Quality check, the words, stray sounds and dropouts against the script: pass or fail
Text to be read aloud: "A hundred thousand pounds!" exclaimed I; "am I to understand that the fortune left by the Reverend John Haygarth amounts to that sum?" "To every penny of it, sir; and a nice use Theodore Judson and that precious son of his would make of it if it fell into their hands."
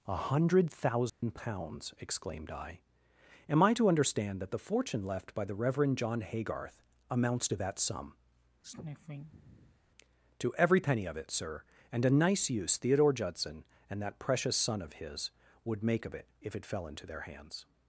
fail